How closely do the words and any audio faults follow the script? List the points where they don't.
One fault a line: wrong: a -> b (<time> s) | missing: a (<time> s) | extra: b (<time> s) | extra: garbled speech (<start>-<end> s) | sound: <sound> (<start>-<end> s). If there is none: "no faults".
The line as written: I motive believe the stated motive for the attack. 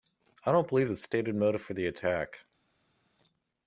wrong: motive -> don't (0.5 s)